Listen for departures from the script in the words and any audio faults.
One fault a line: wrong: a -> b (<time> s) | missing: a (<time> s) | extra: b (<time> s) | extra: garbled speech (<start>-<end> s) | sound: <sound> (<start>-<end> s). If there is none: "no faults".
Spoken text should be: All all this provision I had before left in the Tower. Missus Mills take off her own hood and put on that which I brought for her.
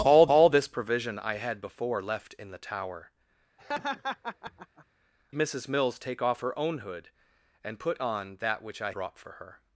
sound: laugh (3.6-4.9 s)